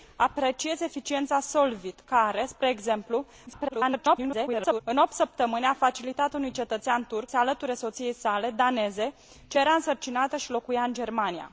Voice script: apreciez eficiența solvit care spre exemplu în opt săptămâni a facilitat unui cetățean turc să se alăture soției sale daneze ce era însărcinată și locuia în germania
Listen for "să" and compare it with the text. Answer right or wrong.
wrong